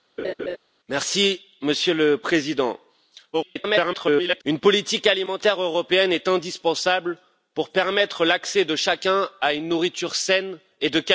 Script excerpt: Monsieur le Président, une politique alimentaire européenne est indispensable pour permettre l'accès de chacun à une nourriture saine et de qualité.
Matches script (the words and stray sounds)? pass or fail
fail